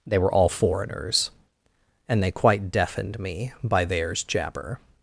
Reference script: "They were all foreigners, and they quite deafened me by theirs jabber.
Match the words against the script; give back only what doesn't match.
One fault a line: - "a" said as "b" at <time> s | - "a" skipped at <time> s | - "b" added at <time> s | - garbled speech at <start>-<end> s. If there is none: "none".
none